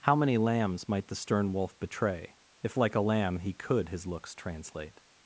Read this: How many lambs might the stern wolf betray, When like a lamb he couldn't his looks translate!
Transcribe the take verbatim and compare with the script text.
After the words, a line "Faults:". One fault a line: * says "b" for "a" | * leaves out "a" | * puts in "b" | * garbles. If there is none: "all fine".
How many lambs might the stern wolf betray, If like a lamb he could his looks translate!
Faults:
* says "If" for "When"
* says "could" for "couldn't"